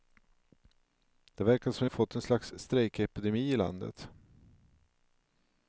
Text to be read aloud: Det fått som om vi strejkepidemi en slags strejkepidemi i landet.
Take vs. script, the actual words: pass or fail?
fail